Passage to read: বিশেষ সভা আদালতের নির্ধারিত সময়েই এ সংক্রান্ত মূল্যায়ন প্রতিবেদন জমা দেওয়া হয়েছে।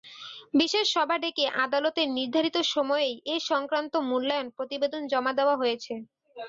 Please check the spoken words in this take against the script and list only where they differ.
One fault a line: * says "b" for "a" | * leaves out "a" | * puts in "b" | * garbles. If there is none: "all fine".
* puts in "ডেকে"